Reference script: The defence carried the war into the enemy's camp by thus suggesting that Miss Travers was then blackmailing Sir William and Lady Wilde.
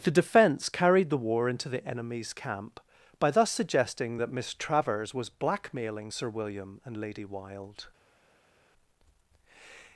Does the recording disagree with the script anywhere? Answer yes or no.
yes